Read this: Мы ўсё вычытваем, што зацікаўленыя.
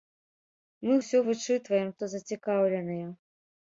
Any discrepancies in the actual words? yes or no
no